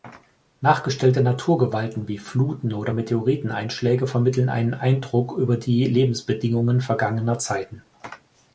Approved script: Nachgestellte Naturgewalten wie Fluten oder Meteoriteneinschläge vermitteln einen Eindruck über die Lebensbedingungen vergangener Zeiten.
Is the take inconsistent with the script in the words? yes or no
no